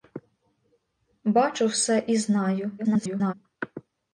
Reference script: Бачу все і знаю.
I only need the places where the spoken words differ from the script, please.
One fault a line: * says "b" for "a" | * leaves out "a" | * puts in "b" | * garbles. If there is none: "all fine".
* garbles